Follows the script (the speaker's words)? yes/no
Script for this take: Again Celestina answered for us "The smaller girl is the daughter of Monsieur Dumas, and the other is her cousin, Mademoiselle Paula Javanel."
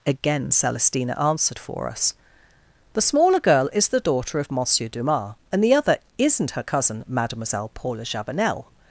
no